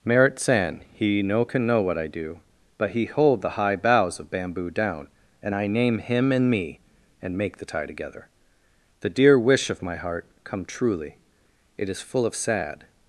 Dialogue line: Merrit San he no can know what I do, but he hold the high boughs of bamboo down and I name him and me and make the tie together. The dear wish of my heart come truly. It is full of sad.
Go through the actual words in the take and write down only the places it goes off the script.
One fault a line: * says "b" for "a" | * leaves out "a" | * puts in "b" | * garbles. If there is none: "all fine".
all fine